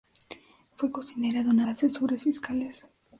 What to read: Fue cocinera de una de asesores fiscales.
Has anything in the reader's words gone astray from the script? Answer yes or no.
no